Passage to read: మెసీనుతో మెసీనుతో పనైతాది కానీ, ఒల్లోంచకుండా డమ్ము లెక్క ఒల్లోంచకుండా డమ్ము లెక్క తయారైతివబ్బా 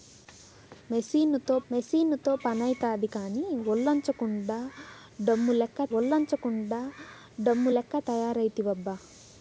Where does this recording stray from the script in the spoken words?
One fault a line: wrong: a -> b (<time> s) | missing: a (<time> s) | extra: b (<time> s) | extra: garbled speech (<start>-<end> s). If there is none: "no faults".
no faults